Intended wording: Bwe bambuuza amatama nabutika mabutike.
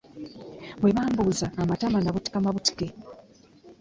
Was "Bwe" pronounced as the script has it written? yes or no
yes